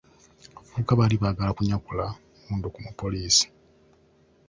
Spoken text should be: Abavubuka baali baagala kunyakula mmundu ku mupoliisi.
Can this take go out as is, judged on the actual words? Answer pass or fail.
pass